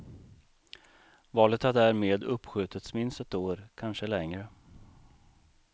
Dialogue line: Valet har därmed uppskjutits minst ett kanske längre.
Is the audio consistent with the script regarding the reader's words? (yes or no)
no